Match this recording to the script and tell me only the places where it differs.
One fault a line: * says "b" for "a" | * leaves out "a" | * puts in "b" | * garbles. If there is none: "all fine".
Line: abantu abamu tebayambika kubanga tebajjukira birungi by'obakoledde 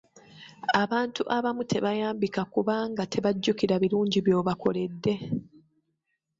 all fine